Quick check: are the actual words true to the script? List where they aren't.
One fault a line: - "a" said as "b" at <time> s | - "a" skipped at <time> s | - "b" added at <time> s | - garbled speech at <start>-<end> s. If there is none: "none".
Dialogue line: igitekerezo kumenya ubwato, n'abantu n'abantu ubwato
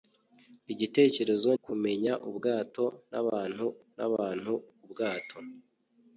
none